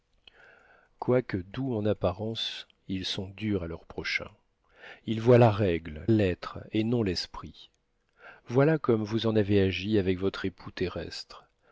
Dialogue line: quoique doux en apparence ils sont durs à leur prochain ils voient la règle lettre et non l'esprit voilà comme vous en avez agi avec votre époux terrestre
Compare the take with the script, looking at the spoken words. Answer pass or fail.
pass